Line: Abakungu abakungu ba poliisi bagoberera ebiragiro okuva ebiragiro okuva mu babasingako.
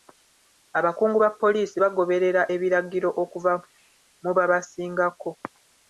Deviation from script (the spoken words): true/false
true